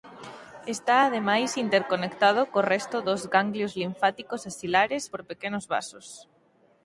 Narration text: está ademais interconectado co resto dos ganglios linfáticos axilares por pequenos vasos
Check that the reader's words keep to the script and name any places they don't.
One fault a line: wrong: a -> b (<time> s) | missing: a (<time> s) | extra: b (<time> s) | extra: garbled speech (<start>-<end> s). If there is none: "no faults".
no faults